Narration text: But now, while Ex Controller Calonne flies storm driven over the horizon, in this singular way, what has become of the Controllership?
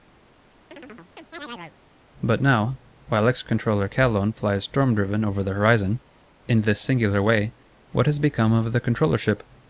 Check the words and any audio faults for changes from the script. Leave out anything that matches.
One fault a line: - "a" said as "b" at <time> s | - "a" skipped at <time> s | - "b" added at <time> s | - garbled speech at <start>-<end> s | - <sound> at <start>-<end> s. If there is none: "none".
- chirp at 0.7-1.8 s